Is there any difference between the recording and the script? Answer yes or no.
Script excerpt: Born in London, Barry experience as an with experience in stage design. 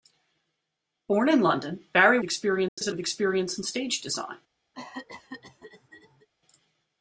no